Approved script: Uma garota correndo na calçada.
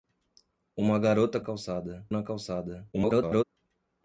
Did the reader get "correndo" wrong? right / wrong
wrong